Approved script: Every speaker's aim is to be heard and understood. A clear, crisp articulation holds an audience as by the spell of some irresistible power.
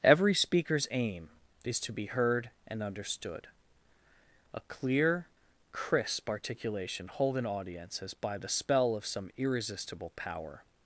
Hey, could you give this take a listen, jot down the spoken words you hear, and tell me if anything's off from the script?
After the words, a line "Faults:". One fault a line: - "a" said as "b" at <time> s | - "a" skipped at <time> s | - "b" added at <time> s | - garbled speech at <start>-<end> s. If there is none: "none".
Every speaker's aim is to be heard and understood. A clear, crisp articulation hold an audience as by the spell of some irresistible power.
Faults:
- "holds" said as "hold" at 7.1 s